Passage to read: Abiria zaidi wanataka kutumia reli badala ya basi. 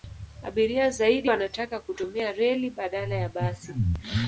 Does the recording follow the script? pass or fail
pass